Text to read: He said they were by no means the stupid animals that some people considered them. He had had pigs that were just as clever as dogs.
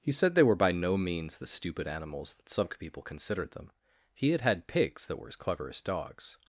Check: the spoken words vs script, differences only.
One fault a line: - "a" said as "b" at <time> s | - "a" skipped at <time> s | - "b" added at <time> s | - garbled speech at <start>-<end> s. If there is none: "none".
- "just" skipped at 5.3 s